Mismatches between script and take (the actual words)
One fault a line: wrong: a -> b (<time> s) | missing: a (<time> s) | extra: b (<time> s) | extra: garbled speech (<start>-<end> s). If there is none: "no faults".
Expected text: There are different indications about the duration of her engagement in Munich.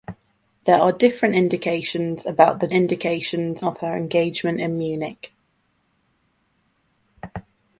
wrong: duration -> indications (2.7 s)